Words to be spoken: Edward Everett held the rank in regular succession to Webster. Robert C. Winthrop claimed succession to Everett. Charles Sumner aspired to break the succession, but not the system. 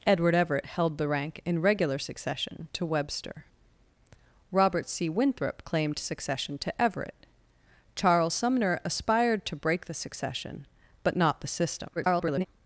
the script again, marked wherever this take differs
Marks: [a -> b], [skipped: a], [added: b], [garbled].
Edward Everett held the rank in regular succession to Webster. Robert C. Winthrop claimed succession to Everett. Charles Sumner aspired to break the succession, but not the system. [garbled]